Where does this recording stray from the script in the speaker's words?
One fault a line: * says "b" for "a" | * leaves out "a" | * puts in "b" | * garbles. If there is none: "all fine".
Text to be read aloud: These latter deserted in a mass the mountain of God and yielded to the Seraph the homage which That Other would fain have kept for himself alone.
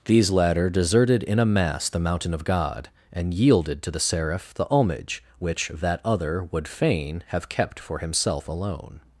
all fine